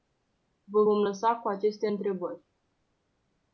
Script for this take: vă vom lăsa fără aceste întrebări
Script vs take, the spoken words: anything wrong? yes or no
yes